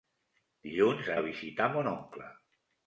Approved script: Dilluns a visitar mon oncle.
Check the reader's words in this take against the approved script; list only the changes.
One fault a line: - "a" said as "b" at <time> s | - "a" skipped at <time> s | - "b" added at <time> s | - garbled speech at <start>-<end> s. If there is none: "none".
none